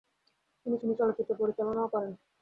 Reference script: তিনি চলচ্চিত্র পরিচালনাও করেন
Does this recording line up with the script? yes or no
no